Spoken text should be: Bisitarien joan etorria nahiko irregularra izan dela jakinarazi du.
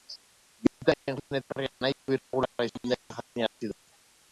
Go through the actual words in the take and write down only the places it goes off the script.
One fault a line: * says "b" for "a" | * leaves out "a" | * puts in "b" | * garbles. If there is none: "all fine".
all fine